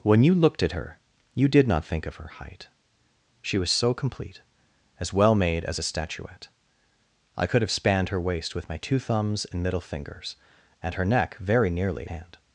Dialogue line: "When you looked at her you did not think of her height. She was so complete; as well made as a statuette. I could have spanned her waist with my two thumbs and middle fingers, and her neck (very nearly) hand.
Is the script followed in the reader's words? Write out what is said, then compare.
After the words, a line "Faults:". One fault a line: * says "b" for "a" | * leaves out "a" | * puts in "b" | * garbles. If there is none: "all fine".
"When you looked at her you did not think of her height. She was so complete; as well made as a statuette. I could have spanned her waist with my two thumbs and middle fingers, and her neck (very nearly) hand.
Faults:
all fine